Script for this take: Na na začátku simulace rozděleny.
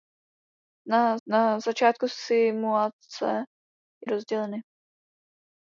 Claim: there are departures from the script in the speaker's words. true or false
false